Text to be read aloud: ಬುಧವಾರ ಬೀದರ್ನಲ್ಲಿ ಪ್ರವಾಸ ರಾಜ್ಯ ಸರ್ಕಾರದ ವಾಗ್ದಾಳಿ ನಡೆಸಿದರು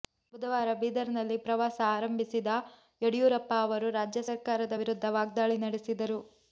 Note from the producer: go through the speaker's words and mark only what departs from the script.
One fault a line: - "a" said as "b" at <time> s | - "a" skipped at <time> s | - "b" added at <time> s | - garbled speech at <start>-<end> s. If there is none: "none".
- "ಆರಂಭಿಸಿದ ಯಡಿಯೂರಪ್ಪ ಅವರು" added at 1.9 s
- "ವಿರುದ್ಧ" added at 4.8 s